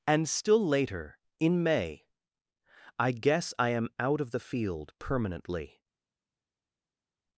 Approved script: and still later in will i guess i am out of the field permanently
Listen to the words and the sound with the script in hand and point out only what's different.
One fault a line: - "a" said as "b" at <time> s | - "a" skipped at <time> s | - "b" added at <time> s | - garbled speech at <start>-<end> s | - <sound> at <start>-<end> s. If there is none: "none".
- "will" said as "may" at 1.6 s